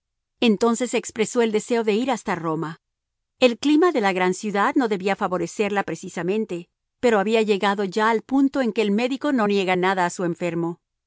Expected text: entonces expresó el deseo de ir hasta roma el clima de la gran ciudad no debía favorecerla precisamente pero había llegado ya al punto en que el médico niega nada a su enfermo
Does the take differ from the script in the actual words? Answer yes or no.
yes